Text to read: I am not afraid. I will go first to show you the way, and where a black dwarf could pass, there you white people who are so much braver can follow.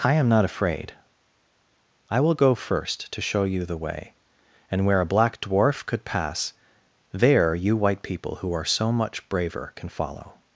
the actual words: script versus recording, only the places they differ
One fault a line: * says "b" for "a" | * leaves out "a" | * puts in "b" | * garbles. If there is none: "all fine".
all fine